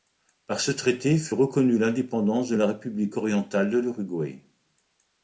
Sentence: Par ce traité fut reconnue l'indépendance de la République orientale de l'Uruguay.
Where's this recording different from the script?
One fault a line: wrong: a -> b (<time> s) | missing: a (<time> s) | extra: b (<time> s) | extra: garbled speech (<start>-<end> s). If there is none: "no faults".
no faults